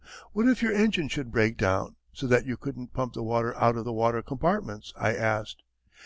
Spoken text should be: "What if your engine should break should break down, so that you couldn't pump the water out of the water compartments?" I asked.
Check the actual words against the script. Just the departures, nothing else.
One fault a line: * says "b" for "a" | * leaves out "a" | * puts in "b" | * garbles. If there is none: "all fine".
* leaves out "should break"